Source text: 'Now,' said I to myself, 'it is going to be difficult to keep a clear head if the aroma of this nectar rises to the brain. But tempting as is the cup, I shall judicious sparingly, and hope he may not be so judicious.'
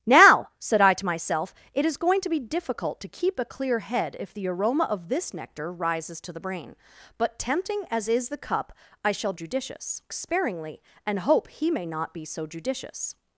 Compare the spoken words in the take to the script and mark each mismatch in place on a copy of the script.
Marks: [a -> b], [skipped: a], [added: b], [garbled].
'Now,' said I to myself, 'it is going to be difficult to keep a clear head if the aroma of this nectar rises to the brain. But tempting as is the cup, I shall judicious sparingly, and hope he may not be so judicious.'